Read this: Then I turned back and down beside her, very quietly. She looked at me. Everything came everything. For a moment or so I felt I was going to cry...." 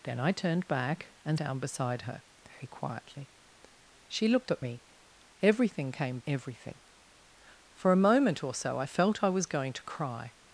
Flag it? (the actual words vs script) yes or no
no